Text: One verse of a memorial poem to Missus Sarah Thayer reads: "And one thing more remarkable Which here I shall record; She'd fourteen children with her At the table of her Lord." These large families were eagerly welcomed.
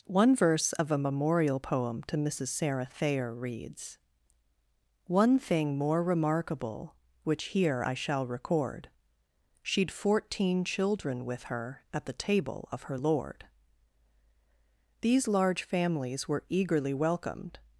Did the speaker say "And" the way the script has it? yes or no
no